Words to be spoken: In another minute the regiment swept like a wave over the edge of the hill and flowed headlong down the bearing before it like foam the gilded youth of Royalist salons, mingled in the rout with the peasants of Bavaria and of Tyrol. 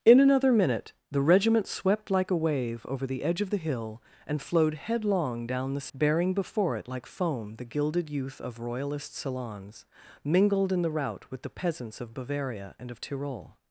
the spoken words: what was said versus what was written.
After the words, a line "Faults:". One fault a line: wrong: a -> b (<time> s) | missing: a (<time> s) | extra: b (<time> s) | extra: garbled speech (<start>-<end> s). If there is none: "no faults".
In another minute the regiment swept like a wave over the edge of the hill and flowed headlong down the bearing before it like foam the gilded youth of Royalist salons, mingled in the rout with the peasants of Bavaria and of Tyrol.
Faults:
no faults